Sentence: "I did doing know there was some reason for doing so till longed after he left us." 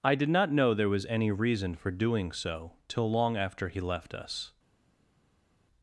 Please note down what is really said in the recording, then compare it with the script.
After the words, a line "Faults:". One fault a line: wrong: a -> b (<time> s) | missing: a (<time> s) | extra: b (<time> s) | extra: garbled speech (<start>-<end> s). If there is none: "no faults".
"I did not know there was any reason for doing so till long after he left us."
Faults:
wrong: doing -> not (0.3 s)
wrong: some -> any (1.1 s)
wrong: longed -> long (3.1 s)